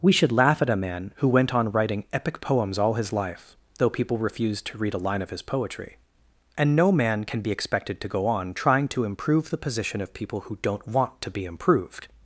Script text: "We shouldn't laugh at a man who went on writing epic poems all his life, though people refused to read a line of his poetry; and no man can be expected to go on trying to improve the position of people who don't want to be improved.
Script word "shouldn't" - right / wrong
wrong